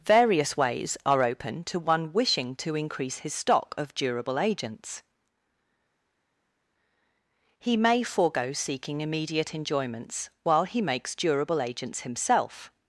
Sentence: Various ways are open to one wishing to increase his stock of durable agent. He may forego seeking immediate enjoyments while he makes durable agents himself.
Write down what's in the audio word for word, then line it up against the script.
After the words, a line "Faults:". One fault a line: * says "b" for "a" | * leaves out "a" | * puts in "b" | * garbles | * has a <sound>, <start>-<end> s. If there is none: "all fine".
Various ways are open to one wishing to increase his stock of durable agents. He may forego seeking immediate enjoyments while he makes durable agents himself.
Faults:
* says "agents" for "agent"